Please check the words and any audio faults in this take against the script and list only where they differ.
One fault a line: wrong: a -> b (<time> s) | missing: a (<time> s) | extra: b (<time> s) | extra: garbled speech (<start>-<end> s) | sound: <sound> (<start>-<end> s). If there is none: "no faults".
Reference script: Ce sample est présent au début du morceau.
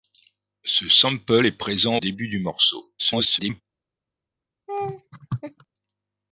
missing: au (2.0 s)
extra: garbled speech (3.0-3.6 s)
sound: laugh (4.7-5.7 s)